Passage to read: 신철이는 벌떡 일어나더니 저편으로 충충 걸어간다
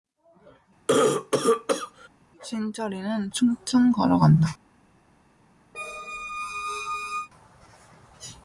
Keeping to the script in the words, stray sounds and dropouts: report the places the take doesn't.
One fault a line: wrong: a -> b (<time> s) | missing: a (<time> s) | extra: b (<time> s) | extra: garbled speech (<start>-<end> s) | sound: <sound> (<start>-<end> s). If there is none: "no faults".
sound: cough (0.9-2.1 s)
missing: 벌떡 일어나더니 저편으로 (3.3 s)
sound: squeak (5.7-7.3 s)